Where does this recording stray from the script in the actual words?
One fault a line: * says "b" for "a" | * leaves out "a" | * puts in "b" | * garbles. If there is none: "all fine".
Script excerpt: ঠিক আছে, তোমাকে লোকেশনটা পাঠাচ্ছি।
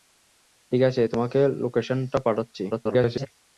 * garbles